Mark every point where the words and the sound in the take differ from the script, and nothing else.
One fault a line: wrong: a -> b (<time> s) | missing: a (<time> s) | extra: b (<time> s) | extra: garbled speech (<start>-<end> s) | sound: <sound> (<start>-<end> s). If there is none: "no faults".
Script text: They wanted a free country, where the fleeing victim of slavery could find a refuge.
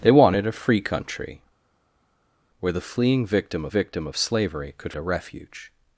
extra: victim of (3.7 s)
missing: find (4.9 s)